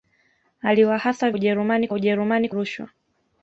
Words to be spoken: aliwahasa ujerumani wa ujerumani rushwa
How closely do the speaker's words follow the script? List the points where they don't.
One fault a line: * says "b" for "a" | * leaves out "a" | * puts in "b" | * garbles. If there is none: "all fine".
all fine